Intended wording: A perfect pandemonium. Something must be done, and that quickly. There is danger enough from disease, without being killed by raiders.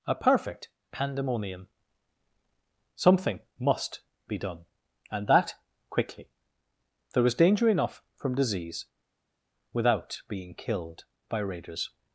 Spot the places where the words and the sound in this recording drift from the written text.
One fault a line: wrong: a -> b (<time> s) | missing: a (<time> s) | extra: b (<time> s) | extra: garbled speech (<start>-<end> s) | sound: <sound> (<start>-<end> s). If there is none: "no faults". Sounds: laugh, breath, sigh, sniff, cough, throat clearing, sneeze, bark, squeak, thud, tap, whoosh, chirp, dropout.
wrong: is -> was (7.2 s)